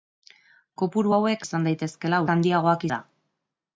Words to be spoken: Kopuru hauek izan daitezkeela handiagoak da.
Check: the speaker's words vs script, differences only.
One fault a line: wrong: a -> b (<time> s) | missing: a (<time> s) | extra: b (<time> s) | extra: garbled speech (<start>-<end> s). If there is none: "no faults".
no faults